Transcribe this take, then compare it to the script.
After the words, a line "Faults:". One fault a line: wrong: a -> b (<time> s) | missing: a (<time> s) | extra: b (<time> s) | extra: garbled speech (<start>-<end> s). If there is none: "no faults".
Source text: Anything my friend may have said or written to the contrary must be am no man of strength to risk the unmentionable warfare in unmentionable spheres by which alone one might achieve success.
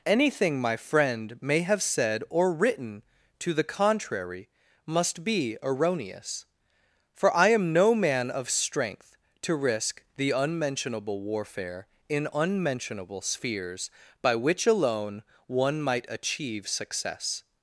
Anything my friend may have said or written to the contrary must be erroneous, for I am no man of strength to risk the unmentionable warfare in unmentionable spheres by which alone one might achieve success.
Faults:
extra: erroneous for I (5.6 s)